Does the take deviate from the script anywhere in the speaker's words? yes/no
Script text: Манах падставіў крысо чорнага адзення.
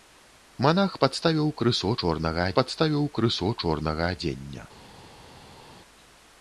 yes